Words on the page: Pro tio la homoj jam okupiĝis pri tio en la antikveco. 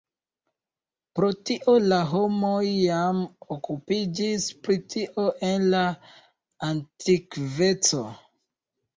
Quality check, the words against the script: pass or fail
pass